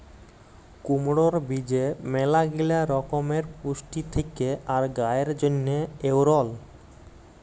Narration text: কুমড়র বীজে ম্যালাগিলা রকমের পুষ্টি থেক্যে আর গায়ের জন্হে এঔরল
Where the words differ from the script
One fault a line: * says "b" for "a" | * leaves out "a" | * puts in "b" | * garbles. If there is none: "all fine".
all fine